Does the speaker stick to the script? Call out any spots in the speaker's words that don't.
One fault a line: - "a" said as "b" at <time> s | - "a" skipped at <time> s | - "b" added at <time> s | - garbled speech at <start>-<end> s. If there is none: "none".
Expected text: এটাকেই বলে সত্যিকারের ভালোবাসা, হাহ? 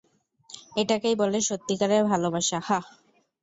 none